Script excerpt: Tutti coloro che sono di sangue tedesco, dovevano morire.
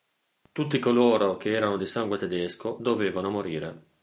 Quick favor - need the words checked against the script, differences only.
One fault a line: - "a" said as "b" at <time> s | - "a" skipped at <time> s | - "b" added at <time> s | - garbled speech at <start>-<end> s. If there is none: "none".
- "sono" said as "erano" at 1.5 s